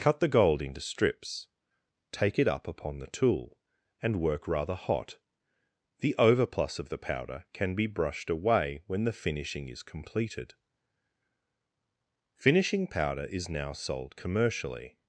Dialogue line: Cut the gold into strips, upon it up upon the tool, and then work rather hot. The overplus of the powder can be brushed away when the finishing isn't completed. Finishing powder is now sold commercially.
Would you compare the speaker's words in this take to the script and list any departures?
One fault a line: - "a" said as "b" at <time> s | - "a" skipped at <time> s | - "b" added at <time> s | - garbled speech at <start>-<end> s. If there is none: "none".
- "upon" said as "take" at 2.1 s
- "then" skipped at 4.2 s
- "isn't" said as "is" at 9.7 s